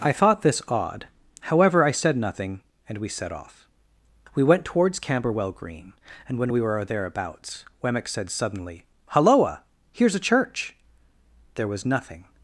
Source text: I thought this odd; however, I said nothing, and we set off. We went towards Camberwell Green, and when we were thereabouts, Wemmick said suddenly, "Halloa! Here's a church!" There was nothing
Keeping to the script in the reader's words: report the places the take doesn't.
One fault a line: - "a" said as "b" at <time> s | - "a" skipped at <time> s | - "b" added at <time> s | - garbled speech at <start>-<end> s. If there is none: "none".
none